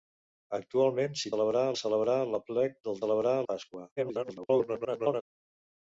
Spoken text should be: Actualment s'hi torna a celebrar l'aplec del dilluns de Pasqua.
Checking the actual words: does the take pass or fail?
fail